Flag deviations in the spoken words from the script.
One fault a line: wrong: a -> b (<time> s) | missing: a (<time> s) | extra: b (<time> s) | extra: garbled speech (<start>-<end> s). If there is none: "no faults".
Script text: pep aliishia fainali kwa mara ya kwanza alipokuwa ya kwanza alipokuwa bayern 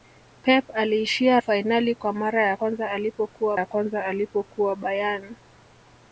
no faults